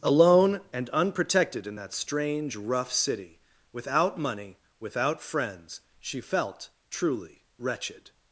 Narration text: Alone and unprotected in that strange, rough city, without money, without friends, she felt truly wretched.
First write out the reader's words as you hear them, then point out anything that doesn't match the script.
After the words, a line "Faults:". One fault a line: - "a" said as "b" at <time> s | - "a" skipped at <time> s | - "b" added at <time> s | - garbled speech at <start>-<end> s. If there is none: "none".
Alone and unprotected in that strange, rough city, without money, without friends, she felt truly wretched.
Faults:
none